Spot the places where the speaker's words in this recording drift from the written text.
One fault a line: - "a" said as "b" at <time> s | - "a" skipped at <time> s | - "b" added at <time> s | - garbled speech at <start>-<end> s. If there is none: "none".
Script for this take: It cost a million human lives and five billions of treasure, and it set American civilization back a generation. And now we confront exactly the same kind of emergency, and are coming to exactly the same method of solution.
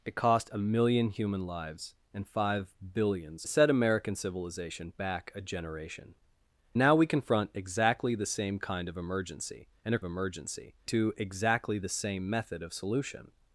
- "of treasure and" skipped at 3.5 s
- "And" skipped at 6.1 s
- "coming" said as "emergency" at 10.0 s